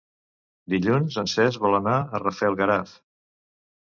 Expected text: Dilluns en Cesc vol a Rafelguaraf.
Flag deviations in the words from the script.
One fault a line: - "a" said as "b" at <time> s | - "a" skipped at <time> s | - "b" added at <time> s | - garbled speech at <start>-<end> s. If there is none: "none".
- "anar" added at 1.8 s